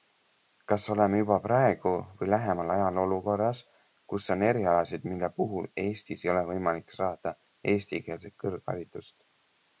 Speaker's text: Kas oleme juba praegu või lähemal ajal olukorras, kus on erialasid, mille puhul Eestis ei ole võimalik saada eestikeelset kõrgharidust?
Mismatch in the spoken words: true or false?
false